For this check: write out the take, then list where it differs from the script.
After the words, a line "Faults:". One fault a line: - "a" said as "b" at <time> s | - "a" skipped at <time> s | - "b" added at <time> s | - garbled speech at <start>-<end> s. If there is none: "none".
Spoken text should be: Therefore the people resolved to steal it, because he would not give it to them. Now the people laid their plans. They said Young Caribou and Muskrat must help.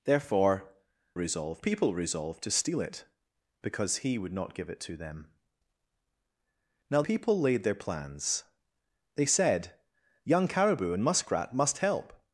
Therefore resolved people resolved to steal it, because he would not give it to them. Now people laid their plans. They said Young Caribou and Muskrat must help.
Faults:
- "the" said as "resolved" at 1.1 s
- "the" skipped at 7.0 s